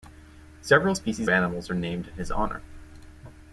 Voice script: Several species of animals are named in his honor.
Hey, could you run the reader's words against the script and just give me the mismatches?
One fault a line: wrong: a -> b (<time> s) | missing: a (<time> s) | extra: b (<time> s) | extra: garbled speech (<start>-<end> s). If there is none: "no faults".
missing: of (1.3 s)